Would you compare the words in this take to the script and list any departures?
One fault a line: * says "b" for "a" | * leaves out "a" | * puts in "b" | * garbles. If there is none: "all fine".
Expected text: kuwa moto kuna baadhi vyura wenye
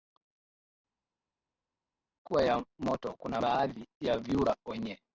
* puts in "ya"
* puts in "ya"